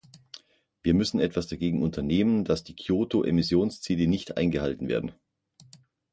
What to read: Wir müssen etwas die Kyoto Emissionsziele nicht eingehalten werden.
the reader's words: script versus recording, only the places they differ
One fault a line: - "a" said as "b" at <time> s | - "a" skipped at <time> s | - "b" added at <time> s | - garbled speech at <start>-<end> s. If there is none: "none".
- "dagegen unternehmen dass" added at 1.4 s